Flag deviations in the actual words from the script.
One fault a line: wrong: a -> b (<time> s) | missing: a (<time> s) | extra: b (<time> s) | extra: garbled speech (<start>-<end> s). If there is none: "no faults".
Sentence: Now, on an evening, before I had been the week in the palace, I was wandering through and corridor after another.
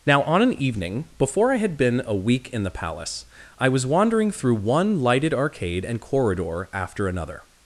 wrong: the -> a (2.0 s)
extra: one lighted arcade (4.5 s)